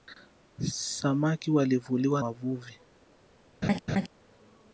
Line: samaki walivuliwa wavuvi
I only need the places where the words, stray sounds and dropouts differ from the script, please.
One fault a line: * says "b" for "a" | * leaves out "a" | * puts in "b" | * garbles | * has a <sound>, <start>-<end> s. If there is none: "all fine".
* has a laugh, 3.6-4.1 s